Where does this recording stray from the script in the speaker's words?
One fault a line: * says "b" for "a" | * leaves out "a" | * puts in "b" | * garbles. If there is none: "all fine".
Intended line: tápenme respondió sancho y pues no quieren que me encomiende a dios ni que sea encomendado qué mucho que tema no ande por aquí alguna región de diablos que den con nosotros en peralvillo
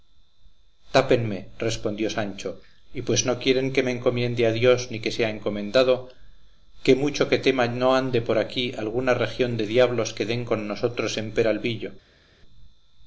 all fine